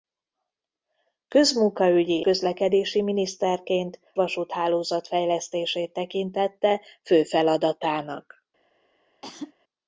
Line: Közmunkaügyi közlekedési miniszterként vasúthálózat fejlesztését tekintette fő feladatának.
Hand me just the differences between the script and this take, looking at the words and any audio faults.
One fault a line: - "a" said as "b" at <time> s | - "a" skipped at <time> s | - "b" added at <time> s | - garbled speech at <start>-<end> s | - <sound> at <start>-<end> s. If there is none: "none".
- cough at 9.2-9.5 s